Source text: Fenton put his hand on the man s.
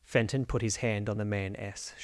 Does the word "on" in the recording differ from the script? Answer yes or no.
no